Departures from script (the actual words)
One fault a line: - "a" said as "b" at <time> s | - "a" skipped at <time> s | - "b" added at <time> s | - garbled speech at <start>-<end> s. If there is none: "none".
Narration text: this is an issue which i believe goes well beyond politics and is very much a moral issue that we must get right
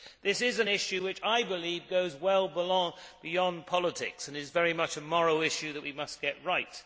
none